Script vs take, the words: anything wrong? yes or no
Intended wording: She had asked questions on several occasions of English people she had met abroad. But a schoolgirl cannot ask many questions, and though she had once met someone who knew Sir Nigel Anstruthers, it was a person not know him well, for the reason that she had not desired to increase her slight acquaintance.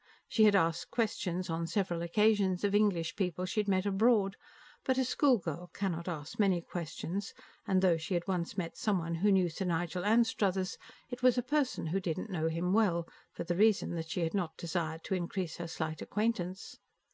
yes